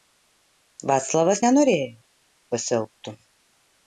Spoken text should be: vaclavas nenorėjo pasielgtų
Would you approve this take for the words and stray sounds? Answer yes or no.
yes